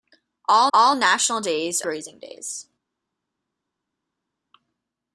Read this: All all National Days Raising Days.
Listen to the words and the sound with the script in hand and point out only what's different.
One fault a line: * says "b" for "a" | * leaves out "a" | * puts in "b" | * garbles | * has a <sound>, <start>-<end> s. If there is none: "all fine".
all fine